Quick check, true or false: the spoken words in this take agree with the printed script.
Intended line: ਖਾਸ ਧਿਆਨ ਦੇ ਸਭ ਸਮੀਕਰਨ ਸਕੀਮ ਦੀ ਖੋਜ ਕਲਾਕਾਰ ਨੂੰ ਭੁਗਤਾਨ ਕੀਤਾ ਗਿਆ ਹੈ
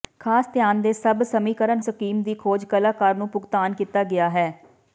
true